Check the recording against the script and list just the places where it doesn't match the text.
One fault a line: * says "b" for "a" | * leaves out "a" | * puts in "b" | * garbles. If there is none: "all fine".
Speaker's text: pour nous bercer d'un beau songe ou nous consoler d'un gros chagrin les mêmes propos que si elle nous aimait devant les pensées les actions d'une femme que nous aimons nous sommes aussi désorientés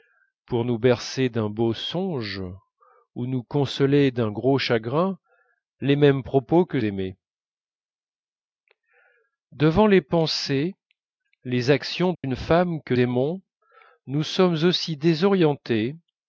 * leaves out "si elle nous"
* leaves out "nous"